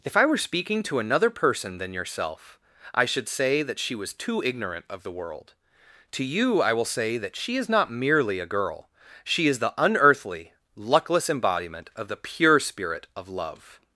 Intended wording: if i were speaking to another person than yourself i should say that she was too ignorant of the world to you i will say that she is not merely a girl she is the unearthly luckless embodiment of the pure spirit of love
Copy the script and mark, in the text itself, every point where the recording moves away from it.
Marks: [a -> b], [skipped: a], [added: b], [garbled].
if i were speaking to another person than yourself i should say that she was too ignorant of the world to you i will say that she is not merely a girl she is the unearthly luckless embodiment of the pure spirit of love